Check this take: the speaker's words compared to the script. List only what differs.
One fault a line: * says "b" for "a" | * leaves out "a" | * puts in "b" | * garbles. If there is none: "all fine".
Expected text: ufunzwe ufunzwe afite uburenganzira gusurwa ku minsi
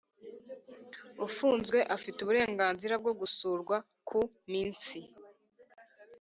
* leaves out "ufunzwe"
* puts in "bwo"